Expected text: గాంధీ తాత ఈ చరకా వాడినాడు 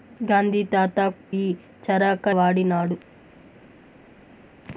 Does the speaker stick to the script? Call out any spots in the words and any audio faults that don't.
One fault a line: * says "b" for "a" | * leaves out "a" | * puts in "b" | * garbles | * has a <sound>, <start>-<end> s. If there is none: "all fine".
all fine